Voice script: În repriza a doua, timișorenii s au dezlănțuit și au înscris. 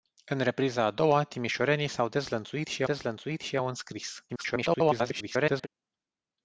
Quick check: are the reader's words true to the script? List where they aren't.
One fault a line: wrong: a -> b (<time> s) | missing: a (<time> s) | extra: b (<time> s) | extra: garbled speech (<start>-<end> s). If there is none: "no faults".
extra: dezlănțuit și (2.8 s)
extra: garbled speech (4.3-5.7 s)